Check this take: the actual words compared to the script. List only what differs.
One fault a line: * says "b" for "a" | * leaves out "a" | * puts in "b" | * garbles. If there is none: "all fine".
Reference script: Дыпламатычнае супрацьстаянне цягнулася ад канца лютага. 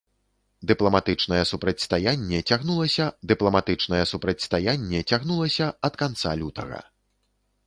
* puts in "дыпламатычнае супрацьстаянне цягнулася"